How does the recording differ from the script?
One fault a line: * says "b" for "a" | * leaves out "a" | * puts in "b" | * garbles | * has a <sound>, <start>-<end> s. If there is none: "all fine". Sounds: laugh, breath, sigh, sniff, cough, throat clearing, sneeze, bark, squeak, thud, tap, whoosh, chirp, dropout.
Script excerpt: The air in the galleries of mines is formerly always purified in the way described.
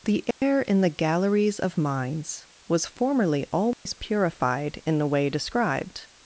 * has a dropout, 0.3-0.4 s
* says "was" for "is"
* has a dropout, 3.7-3.9 s